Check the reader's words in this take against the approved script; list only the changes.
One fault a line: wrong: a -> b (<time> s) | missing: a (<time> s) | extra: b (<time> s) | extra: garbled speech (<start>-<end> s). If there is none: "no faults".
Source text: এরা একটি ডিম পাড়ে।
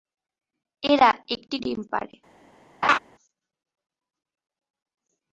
no faults